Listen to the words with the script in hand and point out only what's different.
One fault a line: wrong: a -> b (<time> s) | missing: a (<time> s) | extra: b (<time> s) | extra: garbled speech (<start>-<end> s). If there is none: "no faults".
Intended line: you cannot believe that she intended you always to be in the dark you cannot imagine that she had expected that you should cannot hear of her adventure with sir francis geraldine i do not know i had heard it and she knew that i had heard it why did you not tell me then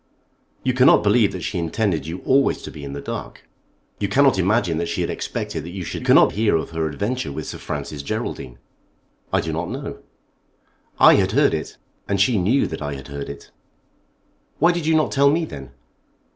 no faults